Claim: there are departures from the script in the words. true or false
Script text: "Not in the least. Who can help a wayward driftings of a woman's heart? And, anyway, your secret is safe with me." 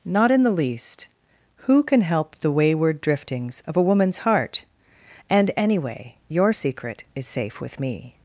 true